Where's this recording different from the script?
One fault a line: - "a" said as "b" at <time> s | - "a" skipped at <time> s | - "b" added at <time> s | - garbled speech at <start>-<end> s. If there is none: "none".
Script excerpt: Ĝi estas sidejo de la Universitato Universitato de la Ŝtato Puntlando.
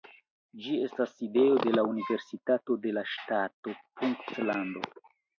- "Universitato" skipped at 2.8 s